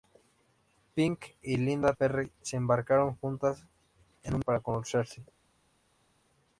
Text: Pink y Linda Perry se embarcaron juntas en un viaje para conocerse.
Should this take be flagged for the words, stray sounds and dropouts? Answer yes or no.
yes